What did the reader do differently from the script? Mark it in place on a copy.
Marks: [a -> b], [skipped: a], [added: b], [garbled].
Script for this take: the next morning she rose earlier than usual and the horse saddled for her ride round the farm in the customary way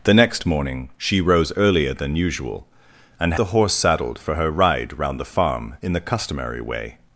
the next morning she rose earlier than usual and the horse saddled for her ride round the farm in the customary way